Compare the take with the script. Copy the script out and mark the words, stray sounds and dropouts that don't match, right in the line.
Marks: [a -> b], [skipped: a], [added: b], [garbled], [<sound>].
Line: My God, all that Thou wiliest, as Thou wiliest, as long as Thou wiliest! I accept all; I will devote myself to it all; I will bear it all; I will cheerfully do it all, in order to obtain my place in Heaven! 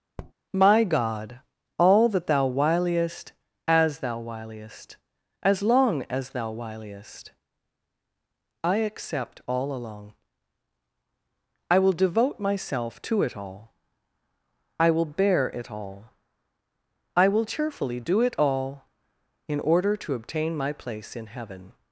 [tap] My God, all that Thou wiliest, as Thou wiliest, as long as Thou wiliest! I accept all; [added: along] I will devote myself to it all; I will bear it all; I will cheerfully do it all, in order to obtain my place in Heaven!